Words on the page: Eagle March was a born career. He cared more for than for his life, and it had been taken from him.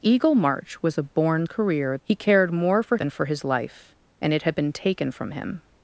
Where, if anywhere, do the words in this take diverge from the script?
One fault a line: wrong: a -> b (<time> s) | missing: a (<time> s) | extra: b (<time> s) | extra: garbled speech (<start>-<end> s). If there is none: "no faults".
no faults